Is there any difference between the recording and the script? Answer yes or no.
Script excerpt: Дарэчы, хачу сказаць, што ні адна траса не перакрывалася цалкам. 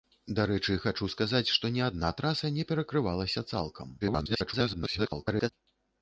yes